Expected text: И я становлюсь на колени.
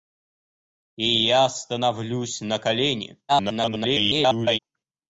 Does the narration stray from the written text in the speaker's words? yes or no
yes